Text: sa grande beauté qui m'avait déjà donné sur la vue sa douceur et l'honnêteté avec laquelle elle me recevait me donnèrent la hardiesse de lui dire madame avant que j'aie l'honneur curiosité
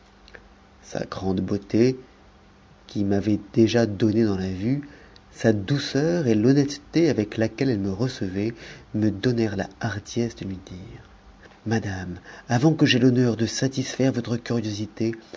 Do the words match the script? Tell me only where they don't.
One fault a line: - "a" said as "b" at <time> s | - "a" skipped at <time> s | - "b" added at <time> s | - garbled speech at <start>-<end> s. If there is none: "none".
- "sur" said as "dans" at 4.2 s
- "de satisfaire votre" added at 13.4 s